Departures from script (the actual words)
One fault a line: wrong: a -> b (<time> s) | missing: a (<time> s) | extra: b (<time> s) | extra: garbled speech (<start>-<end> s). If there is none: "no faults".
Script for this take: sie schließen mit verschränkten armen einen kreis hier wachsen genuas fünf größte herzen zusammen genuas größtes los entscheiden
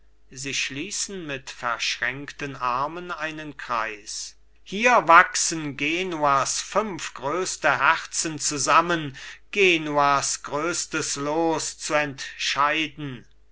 extra: zu (11.8 s)